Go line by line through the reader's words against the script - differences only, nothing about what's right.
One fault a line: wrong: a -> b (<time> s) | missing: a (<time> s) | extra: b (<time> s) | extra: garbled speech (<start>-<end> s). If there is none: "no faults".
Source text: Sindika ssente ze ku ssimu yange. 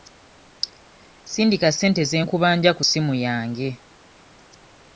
extra: nkubanja (2.2 s)